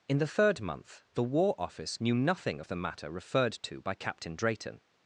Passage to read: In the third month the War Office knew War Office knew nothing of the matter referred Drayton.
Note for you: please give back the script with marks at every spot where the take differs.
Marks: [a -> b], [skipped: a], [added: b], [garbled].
In the third month the War Office knew [skipped: War Office knew] nothing of the matter referred [added: to by Captain] Drayton.